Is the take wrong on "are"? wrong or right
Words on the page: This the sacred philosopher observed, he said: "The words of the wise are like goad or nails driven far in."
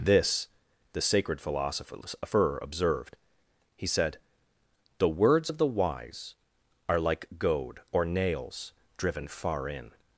right